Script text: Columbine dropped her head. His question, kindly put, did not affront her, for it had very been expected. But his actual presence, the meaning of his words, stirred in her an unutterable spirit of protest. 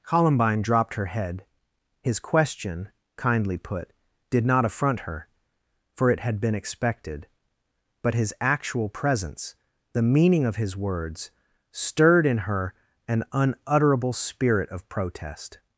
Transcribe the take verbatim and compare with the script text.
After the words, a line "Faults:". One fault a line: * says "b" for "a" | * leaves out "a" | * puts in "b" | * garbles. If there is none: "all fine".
Columbine dropped her head. His question, kindly put, did not affront her, for it had been expected. But his actual presence, the meaning of his words, stirred in her an unutterable spirit of protest.
Faults:
* leaves out "very"